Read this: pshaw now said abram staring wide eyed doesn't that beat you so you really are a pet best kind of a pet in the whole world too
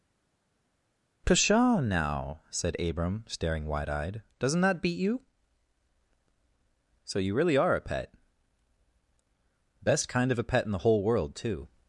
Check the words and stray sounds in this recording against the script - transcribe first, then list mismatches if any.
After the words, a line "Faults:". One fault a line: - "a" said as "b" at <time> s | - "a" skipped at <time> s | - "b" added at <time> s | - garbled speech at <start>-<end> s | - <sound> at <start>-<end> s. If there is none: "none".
pshaw now said abram staring wide eyed doesn't that beat you so you really are a pet best kind of a pet in the whole world too
Faults:
none